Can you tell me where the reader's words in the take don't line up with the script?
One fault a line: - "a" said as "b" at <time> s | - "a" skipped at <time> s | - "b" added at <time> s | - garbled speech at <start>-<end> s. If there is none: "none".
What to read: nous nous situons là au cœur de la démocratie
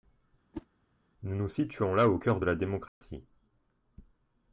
none